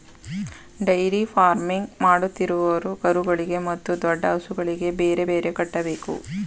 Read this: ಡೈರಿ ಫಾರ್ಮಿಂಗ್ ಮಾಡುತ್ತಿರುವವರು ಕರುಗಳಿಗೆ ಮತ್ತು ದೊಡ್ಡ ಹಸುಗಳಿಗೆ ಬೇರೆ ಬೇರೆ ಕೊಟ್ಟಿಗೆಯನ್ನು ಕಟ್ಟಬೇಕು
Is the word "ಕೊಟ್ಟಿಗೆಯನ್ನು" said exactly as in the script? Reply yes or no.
no